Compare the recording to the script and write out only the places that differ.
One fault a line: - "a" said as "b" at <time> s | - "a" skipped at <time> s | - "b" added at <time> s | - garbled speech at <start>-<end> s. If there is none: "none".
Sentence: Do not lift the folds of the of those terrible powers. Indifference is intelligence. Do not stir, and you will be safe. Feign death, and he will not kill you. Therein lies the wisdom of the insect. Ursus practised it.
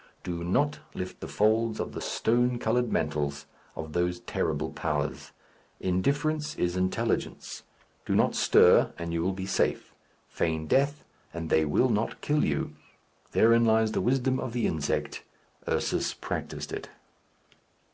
- "stone coloured mantles" added at 2.0 s
- "he" said as "they" at 11.5 s